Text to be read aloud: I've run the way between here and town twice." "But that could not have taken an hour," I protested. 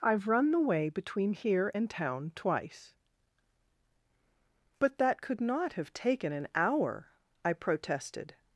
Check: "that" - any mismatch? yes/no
no